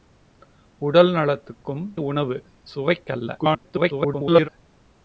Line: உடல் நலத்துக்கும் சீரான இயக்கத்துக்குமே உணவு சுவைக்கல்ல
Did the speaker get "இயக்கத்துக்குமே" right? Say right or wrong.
wrong